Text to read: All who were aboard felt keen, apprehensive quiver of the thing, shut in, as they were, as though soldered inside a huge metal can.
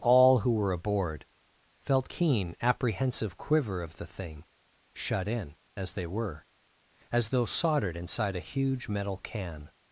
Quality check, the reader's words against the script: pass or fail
pass